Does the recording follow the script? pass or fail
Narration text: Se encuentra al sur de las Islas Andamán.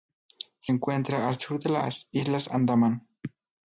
pass